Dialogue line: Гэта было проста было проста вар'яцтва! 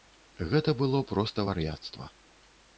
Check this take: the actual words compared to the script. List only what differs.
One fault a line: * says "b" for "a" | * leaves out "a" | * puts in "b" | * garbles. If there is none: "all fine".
* leaves out "было проста"